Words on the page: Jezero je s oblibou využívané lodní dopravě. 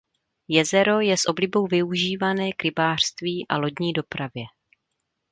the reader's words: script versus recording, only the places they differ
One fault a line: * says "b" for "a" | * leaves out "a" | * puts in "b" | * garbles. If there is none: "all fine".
* puts in "k rybářství a"